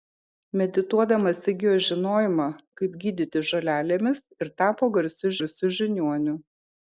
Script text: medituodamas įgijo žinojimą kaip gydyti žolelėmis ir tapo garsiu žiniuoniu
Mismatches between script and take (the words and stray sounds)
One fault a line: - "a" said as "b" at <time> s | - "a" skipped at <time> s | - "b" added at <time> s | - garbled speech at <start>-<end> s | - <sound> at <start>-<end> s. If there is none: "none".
- "garsiu" added at 5.4 s